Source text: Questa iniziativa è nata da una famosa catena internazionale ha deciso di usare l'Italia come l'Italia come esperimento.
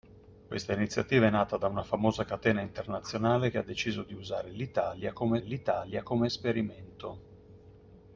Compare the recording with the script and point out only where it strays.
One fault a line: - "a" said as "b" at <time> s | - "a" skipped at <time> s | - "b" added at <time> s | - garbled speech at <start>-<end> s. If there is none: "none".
none